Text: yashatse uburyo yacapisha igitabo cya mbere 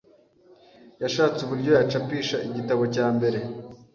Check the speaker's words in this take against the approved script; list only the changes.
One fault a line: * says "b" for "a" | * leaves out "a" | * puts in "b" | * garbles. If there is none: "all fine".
all fine